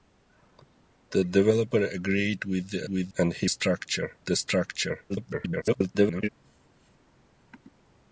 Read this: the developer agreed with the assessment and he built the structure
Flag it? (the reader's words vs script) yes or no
yes